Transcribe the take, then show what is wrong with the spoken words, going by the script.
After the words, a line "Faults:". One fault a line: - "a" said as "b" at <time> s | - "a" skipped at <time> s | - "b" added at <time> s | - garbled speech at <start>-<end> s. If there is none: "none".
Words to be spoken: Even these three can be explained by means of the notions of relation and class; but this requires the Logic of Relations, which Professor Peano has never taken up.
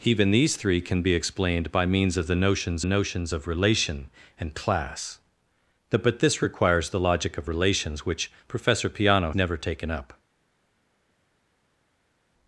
Even these three can be explained by means of the notions notions of relation and class; but this requires the Logic of Relations, which Professor Peano never taken up.
Faults:
- "notions" added at 2.8 s
- "has" skipped at 9.3 s